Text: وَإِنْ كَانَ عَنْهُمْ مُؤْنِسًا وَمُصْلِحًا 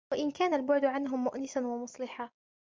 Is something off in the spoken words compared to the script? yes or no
yes